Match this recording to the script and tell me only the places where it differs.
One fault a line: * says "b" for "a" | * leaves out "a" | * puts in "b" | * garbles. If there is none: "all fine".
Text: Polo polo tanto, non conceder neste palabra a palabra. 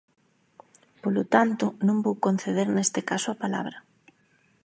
* leaves out "polo"
* puts in "vou"
* says "caso" for "palabra"